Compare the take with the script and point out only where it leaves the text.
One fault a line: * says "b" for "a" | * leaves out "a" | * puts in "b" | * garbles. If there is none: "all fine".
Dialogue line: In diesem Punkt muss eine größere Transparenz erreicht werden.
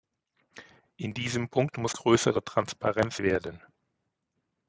* leaves out "eine"
* leaves out "erreicht"